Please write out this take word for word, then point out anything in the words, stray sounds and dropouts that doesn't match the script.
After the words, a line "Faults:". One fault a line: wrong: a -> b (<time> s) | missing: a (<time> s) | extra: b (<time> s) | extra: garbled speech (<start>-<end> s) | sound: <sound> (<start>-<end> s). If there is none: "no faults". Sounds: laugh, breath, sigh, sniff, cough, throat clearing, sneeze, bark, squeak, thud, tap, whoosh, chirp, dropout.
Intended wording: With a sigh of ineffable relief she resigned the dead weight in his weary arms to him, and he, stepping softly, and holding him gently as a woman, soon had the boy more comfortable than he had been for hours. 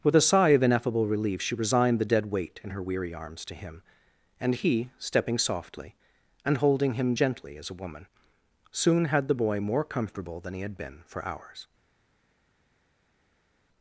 With a sigh of ineffable relief she resigned the dead weight in her weary arms to him, and he, stepping softly, and holding him gently as a woman, soon had the boy more comfortable than he had been for hours.
Faults:
wrong: his -> her (2.7 s)